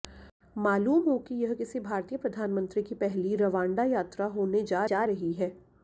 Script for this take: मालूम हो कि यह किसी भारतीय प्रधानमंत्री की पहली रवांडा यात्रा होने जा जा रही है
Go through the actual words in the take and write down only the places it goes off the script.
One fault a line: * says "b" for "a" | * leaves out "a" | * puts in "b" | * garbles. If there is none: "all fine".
all fine